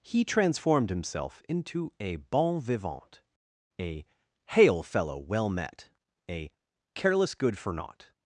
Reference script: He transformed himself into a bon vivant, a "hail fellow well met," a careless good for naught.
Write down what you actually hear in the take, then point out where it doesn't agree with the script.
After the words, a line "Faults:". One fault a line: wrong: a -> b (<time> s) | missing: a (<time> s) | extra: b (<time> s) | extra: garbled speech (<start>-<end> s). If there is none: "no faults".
He transformed himself into a bon vivant, a "hail fellow well met," a careless good for naught.
Faults:
no faults